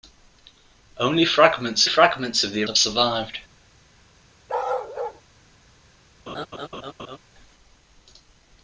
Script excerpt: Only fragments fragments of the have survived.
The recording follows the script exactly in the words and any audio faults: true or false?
false